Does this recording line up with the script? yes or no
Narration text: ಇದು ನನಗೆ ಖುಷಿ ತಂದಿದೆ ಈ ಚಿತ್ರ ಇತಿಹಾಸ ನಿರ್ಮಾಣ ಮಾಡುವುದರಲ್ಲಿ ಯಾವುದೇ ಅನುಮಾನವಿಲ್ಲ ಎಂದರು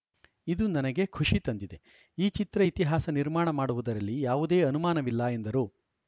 yes